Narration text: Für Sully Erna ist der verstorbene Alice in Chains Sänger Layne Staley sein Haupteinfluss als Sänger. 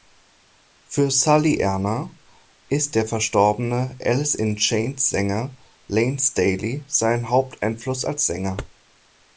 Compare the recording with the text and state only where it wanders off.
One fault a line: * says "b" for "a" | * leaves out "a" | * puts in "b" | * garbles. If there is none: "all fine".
all fine